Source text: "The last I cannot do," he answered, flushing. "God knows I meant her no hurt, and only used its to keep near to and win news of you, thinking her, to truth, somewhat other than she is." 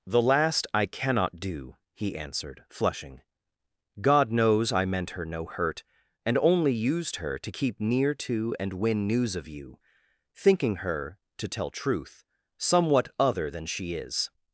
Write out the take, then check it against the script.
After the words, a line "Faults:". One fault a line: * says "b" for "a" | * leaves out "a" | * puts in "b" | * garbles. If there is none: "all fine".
"The last I cannot do," he answered, flushing. "God knows I meant her no hurt, and only used her to keep near to and win news of you, thinking her, to tell truth, somewhat other than she is."
Faults:
* says "her" for "its"
* puts in "tell"